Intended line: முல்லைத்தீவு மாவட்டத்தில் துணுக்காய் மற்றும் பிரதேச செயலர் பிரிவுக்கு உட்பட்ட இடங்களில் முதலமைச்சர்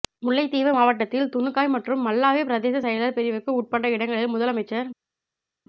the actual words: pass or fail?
fail